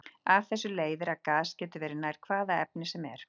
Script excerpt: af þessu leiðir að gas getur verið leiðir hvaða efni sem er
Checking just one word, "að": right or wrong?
right